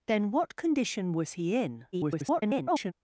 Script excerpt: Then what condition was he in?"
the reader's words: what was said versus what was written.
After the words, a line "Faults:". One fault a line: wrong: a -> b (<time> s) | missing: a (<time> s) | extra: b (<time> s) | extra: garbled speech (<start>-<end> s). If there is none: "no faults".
Then what condition was he in?" [garbled]
Faults:
extra: garbled speech (1.9-2.9 s)